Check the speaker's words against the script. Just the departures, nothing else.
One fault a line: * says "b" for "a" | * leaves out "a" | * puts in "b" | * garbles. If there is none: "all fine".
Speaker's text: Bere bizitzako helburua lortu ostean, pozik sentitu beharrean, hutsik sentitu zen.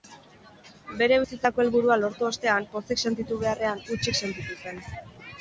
all fine